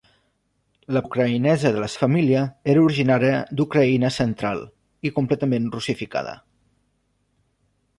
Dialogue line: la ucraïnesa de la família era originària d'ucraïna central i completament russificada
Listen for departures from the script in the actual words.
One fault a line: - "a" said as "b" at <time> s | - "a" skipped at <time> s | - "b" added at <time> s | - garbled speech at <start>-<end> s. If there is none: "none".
none